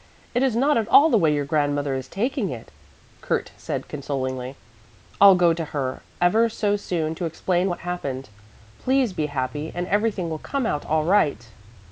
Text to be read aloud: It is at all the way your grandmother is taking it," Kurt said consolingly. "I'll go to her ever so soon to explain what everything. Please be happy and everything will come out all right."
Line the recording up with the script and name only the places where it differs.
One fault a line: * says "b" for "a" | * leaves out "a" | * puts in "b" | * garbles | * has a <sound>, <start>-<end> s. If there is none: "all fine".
* puts in "not"
* says "happened" for "everything"